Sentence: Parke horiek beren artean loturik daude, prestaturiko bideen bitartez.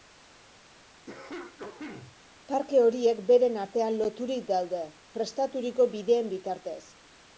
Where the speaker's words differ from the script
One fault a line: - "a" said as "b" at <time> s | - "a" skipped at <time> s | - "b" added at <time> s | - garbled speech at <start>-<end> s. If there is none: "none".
none